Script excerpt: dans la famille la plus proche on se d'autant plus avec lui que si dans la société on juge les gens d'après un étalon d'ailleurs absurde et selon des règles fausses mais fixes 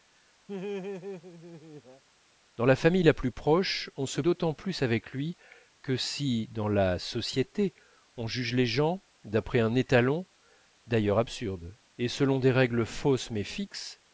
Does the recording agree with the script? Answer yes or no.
yes